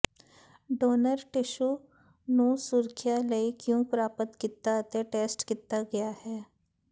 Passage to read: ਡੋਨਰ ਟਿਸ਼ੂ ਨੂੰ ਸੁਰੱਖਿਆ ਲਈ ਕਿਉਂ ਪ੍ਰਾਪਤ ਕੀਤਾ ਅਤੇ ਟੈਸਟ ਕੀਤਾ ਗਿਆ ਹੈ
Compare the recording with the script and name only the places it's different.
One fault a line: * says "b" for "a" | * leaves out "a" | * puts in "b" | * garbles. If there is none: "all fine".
all fine